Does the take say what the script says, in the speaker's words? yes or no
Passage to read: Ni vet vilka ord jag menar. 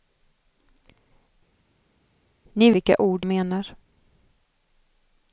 no